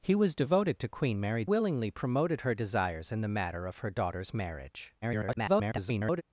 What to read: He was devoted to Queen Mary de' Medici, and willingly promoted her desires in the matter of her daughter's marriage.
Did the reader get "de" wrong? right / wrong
wrong